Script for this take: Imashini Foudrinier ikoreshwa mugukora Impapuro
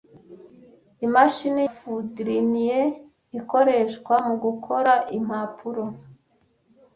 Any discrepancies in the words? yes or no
no